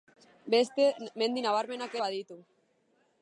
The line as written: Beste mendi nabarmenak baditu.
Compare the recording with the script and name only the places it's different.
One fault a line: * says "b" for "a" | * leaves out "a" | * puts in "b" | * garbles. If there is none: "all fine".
all fine